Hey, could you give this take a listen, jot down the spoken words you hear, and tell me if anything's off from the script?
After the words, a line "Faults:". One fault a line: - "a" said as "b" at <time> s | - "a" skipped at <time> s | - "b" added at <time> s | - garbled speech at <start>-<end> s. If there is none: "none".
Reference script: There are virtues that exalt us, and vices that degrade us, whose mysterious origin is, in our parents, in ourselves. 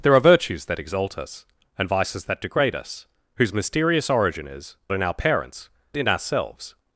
There are virtues that exalt us, and vices that degrade us, whose mysterious origin is, in our parents, in ourselves.
Faults:
none